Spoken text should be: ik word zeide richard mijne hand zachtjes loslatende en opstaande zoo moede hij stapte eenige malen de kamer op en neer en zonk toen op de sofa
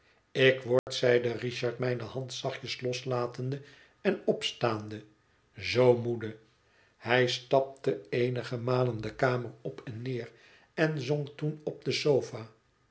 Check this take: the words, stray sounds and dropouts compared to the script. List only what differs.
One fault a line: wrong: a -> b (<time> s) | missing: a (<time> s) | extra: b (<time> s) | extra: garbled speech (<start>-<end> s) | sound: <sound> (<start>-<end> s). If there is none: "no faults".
sound: dropout (0.8-0.9 s)